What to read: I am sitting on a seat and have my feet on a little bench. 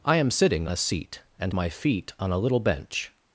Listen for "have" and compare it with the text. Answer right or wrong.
wrong